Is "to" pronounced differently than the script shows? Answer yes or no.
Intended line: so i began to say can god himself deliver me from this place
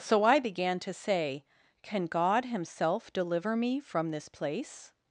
no